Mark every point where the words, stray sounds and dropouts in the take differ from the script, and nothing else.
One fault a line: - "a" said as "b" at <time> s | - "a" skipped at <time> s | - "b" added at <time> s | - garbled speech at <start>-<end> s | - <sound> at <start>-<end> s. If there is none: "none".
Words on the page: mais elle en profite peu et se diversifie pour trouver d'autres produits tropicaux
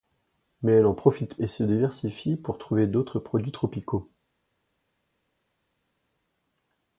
- "peu" skipped at 1.4 s